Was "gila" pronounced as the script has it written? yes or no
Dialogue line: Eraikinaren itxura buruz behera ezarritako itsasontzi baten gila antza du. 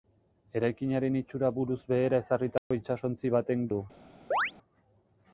no